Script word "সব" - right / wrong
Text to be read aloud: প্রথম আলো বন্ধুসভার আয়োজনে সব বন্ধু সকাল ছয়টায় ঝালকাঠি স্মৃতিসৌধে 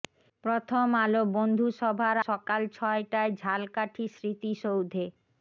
wrong